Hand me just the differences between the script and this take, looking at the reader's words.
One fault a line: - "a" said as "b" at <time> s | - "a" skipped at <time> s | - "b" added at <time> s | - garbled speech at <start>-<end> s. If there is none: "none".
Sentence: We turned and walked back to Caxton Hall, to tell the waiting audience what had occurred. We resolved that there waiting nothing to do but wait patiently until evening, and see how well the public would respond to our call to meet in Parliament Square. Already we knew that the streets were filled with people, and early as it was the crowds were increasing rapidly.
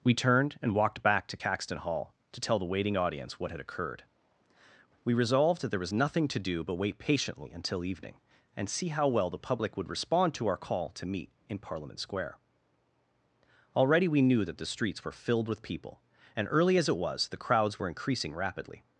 - "waiting" said as "was" at 5.8 s